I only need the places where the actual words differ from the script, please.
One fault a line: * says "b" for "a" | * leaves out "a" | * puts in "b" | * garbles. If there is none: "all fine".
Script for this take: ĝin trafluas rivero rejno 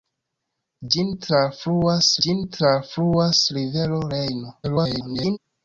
* puts in "ĝin trafluas"
* garbles